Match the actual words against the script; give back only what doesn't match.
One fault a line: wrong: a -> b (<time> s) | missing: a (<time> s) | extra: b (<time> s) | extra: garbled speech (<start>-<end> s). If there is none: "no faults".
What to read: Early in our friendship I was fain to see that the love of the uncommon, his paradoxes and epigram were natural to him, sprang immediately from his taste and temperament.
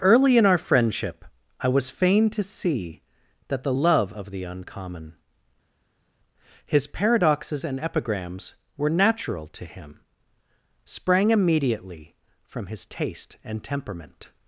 wrong: epigram -> epigrams (7.8 s)